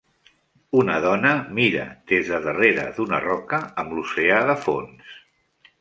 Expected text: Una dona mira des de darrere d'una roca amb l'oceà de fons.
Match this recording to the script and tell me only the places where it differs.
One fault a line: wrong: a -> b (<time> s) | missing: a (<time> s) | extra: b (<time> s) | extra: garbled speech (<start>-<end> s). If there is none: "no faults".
no faults